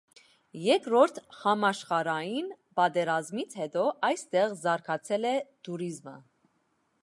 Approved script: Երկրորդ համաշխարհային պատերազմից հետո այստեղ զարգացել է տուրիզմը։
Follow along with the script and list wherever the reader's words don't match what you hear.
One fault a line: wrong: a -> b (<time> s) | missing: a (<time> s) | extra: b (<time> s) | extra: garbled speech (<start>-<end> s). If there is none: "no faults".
no faults